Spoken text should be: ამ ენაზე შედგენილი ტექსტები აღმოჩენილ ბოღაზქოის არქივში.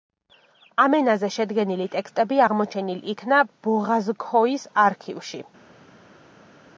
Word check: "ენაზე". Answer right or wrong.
right